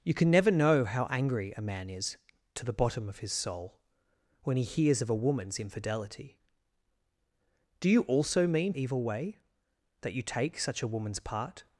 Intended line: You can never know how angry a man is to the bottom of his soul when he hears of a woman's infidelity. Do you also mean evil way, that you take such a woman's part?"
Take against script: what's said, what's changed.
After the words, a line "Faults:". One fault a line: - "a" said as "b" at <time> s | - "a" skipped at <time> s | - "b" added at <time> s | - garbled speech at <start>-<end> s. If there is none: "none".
You can never know how angry a man is to the bottom of his soul when he hears of a woman's infidelity. Do you also mean evil way, that you take such a woman's part?"
Faults:
none